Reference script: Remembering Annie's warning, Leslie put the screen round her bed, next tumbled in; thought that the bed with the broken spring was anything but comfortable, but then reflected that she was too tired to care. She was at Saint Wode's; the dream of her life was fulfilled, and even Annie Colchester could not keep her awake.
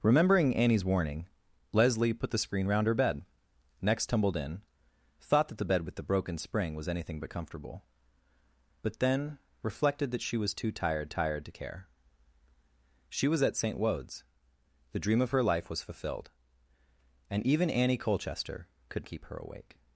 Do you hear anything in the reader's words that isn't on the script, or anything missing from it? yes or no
yes